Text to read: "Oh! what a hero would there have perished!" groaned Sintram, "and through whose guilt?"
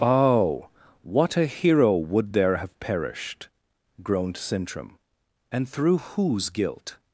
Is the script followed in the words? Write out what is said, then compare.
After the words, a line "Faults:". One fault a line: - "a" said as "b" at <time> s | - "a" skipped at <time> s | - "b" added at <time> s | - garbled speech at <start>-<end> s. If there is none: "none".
"Oh! what a hero would there have perished!" groaned Sintram, "and through whose guilt?"
Faults:
none